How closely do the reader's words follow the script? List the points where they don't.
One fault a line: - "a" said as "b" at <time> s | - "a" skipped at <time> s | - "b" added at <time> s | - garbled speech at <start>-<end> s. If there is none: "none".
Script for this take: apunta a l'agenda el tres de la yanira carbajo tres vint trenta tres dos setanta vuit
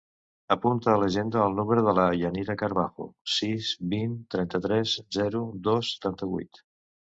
- "tres" said as "número" at 1.6 s
- "tres" said as "sis" at 3.4 s
- "zero" added at 5.2 s